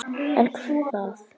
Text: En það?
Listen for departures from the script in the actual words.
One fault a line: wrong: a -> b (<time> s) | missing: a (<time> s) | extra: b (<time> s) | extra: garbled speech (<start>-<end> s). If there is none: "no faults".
no faults